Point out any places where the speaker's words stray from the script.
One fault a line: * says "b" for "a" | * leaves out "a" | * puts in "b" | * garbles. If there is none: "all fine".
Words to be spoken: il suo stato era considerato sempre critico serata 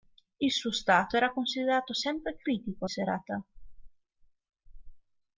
all fine